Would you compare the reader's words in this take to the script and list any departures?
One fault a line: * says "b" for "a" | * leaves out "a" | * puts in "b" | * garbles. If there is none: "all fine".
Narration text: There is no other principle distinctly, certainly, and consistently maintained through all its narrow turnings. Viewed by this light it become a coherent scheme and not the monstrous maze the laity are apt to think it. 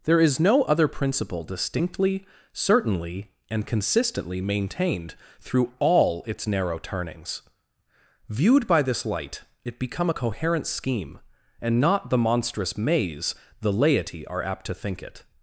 all fine